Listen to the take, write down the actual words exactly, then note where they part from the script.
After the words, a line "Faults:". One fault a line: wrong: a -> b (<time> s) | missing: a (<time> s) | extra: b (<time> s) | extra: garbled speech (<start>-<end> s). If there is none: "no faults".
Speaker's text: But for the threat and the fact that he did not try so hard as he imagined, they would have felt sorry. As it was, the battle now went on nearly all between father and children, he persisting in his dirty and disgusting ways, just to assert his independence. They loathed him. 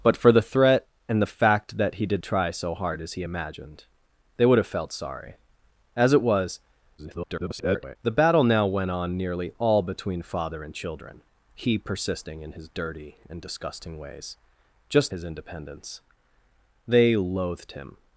But for the threat and the fact that he did try so hard as he imagined, they would have felt sorry. As it was, [garbled] the battle now went on nearly all between father and children, he persisting in his dirty and disgusting ways, just his independence. They loathed him.
Faults:
missing: not (2.2 s)
extra: garbled speech (7.0-8.0 s)
missing: to assert (15.1 s)